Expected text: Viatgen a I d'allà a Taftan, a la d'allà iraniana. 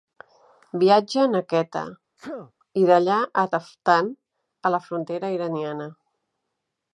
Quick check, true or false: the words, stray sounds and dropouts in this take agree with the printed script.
false